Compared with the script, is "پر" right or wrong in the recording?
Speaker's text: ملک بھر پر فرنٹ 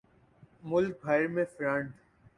wrong